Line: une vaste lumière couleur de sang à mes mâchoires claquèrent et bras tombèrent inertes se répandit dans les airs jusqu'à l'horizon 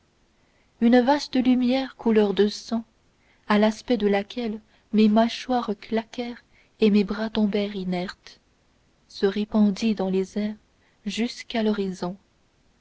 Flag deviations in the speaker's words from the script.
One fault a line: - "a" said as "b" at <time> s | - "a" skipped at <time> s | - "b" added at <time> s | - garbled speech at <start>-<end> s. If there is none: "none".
- "l'aspect de laquelle" added at 3.6 s
- "mes" added at 6.9 s